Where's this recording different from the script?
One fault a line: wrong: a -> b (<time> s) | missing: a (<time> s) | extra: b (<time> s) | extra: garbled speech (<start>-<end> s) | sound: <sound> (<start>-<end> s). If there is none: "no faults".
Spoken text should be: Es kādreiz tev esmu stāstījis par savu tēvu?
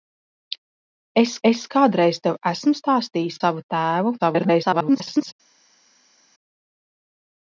extra: es (1.5 s)
missing: par (3.4 s)
extra: garbled speech (4.2-5.3 s)